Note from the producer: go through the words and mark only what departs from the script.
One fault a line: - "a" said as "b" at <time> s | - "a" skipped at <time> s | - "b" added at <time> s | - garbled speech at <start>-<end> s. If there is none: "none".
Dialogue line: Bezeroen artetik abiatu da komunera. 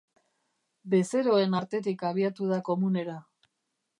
none